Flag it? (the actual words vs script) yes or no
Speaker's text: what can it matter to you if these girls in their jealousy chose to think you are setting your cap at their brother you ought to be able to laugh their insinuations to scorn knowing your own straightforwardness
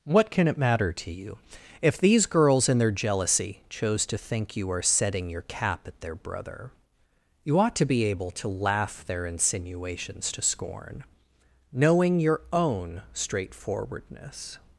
no